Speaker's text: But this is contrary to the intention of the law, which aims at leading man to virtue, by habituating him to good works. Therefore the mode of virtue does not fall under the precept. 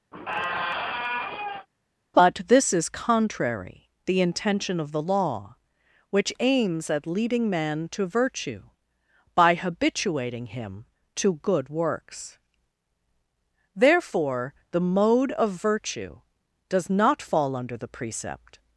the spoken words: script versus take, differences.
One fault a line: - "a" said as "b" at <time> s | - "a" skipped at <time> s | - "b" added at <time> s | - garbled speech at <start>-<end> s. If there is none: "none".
- "to" skipped at 3.9 s